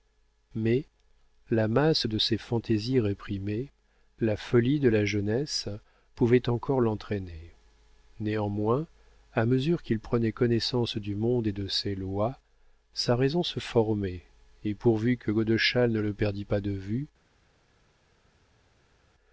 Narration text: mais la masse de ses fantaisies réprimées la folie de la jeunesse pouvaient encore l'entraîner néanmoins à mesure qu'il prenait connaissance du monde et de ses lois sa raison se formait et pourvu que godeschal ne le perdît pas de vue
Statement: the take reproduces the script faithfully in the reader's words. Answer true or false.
true